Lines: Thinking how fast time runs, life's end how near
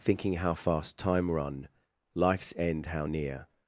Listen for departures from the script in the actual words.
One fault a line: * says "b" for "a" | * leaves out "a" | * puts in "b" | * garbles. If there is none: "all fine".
* says "run" for "runs"